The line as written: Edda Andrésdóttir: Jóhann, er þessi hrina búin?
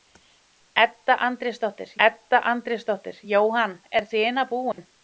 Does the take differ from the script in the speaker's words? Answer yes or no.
yes